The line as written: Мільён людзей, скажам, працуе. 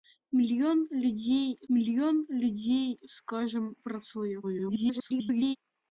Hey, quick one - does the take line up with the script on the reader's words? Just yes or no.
no